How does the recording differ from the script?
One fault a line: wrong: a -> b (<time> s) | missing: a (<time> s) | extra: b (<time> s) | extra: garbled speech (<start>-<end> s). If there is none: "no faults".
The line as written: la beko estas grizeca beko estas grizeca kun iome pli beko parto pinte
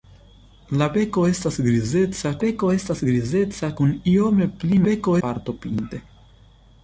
no faults